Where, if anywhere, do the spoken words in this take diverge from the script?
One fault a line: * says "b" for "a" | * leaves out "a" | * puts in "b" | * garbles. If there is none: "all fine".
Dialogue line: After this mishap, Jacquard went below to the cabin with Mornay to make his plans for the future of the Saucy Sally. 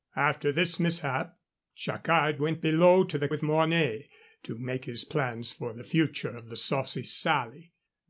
* leaves out "cabin"